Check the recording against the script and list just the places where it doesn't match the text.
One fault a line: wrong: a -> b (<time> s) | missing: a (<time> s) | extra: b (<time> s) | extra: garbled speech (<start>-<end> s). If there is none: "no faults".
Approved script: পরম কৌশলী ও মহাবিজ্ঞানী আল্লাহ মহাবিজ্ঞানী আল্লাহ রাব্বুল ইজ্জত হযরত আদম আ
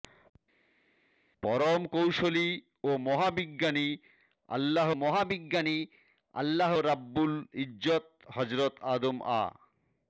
no faults